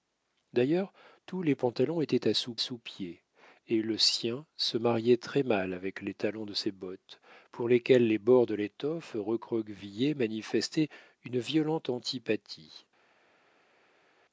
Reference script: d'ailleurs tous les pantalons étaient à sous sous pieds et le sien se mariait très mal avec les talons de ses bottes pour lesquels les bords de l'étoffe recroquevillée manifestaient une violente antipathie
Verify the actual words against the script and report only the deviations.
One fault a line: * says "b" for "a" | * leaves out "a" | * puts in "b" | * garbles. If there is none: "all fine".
all fine